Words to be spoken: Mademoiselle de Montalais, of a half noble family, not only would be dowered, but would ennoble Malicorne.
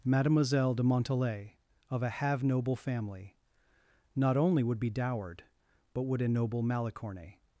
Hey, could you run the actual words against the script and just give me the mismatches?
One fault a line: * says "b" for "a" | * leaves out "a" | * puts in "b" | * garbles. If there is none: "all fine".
* says "have" for "half"